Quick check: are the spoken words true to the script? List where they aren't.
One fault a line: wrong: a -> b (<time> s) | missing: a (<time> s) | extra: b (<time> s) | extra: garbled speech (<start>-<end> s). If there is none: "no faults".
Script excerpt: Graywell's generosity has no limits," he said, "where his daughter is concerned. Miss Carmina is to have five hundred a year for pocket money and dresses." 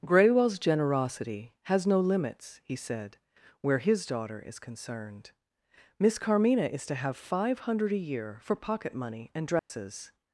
no faults